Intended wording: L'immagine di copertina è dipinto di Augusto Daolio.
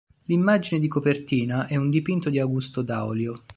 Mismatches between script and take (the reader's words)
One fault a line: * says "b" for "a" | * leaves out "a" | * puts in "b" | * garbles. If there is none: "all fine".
* puts in "un"